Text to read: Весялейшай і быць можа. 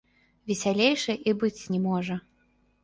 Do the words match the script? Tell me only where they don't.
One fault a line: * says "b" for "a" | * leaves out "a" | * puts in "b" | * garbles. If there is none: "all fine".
* puts in "не"